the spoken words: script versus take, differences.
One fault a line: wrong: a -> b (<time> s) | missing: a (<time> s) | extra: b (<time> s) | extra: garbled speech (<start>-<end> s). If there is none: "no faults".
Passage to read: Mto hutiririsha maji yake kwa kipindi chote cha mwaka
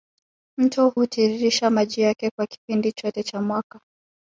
no faults